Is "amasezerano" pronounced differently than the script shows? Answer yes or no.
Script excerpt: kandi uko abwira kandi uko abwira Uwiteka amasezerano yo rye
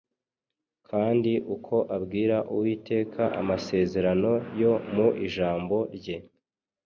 no